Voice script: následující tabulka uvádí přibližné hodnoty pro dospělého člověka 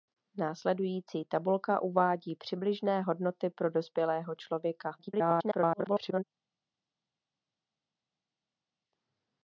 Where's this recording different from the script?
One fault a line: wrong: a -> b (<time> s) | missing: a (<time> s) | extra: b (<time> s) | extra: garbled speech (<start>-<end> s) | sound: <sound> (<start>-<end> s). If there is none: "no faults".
extra: garbled speech (5.0-6.2 s)